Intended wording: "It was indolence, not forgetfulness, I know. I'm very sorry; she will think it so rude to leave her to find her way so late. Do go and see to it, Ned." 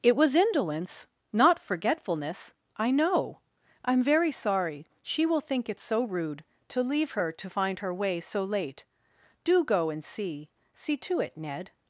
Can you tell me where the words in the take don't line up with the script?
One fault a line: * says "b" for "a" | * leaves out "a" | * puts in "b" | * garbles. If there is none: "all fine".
* puts in "see"